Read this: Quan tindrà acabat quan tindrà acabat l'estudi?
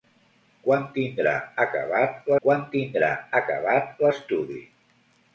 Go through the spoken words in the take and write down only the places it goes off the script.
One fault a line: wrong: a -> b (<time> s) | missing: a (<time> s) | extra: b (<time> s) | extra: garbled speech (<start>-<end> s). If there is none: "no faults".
no faults